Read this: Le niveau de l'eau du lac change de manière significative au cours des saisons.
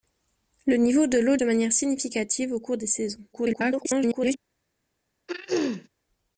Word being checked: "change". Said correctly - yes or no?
no